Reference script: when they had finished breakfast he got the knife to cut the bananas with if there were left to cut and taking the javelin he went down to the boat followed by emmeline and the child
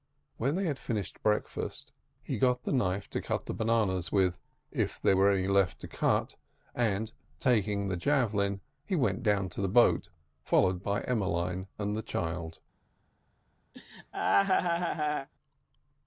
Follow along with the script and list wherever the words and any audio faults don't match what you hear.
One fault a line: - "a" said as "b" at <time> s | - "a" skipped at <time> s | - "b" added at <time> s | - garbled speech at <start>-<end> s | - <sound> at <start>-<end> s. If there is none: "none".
- "any" added at 5.3 s
- laugh at 13.7-15.3 s